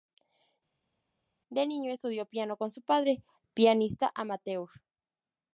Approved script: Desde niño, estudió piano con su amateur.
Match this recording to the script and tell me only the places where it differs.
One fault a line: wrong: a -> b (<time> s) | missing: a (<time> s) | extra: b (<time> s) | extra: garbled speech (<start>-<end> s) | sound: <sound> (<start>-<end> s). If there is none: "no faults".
wrong: Desde -> De (1.5 s)
extra: padre pianista (2.8 s)